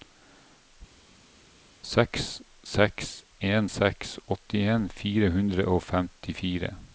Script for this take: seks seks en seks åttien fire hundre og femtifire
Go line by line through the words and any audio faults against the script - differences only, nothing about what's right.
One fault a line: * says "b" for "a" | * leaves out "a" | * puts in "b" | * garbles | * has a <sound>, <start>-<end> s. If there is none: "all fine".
all fine